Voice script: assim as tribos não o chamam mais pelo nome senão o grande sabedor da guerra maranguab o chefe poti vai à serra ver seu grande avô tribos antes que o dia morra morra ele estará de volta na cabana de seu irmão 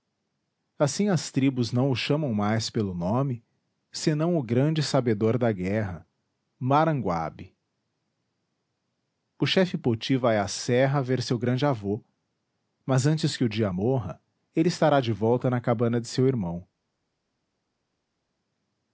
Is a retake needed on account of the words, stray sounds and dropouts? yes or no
yes